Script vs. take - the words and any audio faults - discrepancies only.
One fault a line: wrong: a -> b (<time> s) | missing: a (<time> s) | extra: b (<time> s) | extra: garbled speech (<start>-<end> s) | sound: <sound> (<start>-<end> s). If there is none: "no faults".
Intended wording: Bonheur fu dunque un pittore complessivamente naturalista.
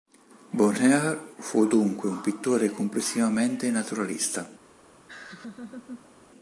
sound: laugh (5.1-6.1 s)